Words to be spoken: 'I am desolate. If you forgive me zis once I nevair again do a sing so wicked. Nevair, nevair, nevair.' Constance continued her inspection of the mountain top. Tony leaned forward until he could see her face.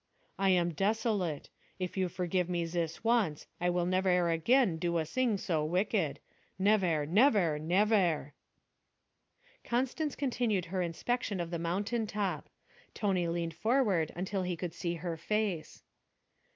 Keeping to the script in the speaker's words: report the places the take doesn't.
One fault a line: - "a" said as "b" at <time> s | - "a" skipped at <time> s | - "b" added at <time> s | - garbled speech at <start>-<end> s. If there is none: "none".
- "will" added at 3.7 s